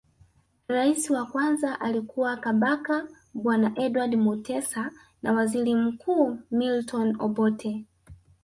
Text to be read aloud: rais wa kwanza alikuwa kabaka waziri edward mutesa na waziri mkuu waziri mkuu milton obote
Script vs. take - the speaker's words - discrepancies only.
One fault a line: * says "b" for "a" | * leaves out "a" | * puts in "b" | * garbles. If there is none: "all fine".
* says "bwana" for "waziri"
* leaves out "waziri mkuu"